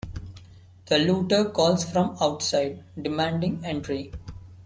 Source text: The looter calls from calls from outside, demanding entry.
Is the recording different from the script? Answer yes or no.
yes